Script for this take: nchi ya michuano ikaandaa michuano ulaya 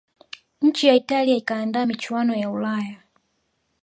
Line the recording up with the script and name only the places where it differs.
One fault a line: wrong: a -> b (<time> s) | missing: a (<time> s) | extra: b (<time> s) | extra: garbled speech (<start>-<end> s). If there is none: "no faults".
wrong: michuano -> italia (0.9 s)
extra: ya (2.3 s)